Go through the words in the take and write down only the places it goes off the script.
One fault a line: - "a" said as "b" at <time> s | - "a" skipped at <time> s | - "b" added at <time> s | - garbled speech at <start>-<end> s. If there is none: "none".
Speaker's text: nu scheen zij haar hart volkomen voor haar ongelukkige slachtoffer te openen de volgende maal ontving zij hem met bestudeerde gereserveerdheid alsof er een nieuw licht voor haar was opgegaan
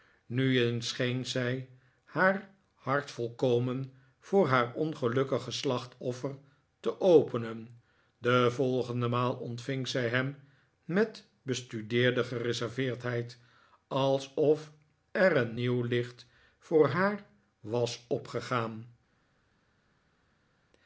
- "eens" added at 0.6 s